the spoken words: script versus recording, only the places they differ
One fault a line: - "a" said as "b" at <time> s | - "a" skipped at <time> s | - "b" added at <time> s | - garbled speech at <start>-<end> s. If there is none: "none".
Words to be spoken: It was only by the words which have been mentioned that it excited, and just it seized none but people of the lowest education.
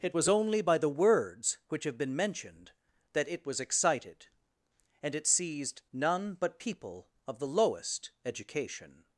- "was" added at 3.4 s
- "just" skipped at 5.1 s